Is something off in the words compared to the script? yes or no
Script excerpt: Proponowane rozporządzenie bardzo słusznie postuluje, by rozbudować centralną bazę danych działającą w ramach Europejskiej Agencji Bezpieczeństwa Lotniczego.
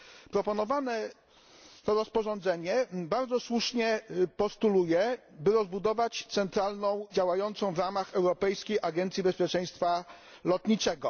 yes